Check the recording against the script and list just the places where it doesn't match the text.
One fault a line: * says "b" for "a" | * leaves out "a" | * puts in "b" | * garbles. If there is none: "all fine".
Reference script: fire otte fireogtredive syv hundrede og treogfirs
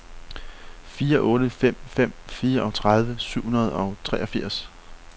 * puts in "fem fem"